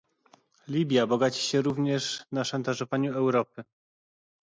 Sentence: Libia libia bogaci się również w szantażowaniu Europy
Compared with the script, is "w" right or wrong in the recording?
wrong